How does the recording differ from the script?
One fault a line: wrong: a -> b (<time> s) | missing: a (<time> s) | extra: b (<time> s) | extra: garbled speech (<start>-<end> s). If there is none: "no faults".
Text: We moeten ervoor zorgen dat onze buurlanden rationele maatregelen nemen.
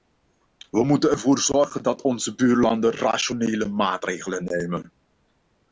no faults